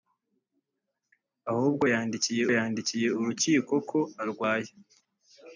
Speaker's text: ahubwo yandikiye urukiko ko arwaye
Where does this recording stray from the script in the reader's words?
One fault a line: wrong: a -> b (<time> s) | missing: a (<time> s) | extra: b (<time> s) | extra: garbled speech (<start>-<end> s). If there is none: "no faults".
extra: yandikiye (2.5 s)